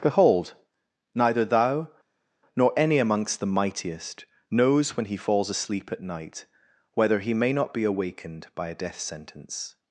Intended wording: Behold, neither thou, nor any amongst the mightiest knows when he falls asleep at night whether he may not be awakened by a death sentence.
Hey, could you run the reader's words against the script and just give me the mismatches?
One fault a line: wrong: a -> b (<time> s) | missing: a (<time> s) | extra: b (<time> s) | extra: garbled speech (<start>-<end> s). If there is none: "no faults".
no faults